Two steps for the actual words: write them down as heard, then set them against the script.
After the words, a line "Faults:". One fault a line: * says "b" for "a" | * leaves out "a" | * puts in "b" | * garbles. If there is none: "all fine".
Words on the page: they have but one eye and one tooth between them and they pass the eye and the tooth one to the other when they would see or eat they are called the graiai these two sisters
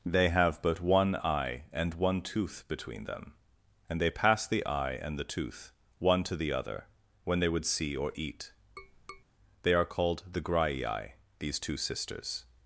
they have but one eye and one tooth between them and they pass the eye and the tooth one to the other when they would see or eat they are called the graiai these two sisters
Faults:
all fine